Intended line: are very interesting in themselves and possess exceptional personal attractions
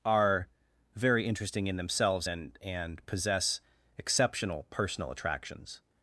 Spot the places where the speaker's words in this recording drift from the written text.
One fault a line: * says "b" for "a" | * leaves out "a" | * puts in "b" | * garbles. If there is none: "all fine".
* puts in "and"